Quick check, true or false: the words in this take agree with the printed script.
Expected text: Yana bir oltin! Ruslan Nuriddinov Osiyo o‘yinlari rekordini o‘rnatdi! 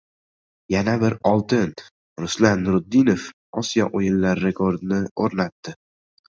true